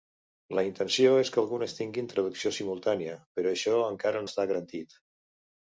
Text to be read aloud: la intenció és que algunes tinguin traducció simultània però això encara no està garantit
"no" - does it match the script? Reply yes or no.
no